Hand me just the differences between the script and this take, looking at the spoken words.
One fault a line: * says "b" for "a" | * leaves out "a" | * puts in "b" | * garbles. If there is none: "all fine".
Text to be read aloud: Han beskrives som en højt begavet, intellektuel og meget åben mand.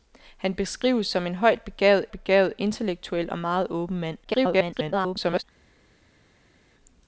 * puts in "begavet"
* garbles